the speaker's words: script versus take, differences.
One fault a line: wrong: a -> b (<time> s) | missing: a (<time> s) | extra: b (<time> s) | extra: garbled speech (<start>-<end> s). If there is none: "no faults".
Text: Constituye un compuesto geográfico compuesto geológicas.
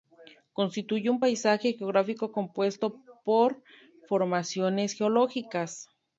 wrong: compuesto -> paisaje (1.2 s)
extra: por formaciones (3.2 s)